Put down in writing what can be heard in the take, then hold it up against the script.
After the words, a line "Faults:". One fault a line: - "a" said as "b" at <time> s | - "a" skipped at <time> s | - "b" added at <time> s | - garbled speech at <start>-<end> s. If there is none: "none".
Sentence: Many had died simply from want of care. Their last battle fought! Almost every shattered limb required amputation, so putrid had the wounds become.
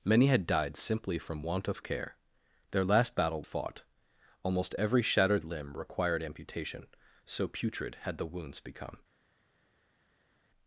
Many had died simply from want of care. Their last battle fought! Almost every shattered limb required amputation, so putrid had the wounds become.
Faults:
none